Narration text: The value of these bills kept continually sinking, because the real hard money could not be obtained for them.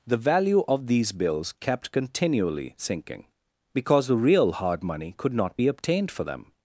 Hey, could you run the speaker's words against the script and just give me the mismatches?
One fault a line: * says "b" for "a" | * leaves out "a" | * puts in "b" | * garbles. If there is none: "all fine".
all fine